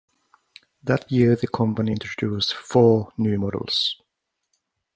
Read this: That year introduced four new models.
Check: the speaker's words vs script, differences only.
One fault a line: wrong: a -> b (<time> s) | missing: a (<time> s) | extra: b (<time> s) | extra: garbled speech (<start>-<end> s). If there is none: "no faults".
extra: the company (1.4 s)